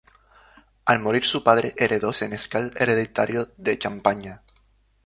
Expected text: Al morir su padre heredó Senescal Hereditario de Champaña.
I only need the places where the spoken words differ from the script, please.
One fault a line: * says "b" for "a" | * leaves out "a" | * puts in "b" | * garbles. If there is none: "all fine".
all fine